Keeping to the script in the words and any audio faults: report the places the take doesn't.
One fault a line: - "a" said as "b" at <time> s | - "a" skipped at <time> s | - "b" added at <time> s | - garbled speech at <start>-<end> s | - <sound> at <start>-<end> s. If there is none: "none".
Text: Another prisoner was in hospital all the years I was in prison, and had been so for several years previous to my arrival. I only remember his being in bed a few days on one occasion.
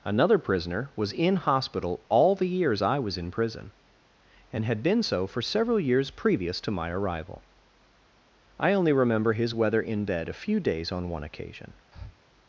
- "being" said as "weather" at 9.5 s
- breath at 11.9-12.2 s